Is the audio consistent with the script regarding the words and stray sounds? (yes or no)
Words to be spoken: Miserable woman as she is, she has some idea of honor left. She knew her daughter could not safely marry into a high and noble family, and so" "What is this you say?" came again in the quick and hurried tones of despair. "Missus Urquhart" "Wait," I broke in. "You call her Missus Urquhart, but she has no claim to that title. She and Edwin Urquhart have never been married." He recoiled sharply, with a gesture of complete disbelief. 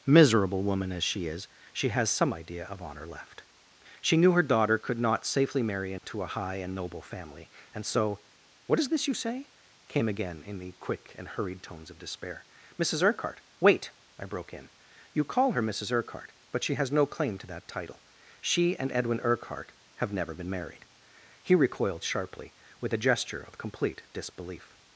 no